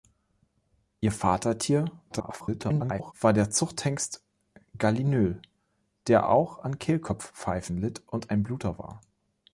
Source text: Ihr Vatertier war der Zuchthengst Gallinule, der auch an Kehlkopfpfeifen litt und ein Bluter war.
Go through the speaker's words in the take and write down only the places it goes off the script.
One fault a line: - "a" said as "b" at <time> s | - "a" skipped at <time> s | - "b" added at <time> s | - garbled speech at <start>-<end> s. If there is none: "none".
- garbled speech at 2.1-3.1 s